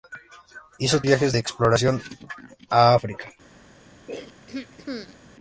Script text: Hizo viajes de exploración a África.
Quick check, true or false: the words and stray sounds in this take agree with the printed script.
false